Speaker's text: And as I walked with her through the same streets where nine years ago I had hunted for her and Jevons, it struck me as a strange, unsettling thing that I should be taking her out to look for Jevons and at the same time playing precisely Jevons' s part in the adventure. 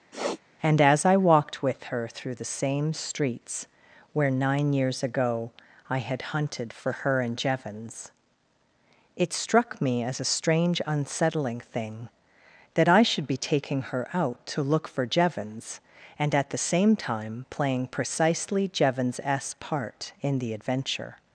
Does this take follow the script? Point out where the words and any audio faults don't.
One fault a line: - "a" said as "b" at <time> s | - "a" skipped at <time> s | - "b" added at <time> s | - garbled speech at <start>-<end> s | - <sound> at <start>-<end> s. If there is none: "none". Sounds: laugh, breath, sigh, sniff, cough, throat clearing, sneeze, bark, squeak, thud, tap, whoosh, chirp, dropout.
- sniff at 0.1-0.4 s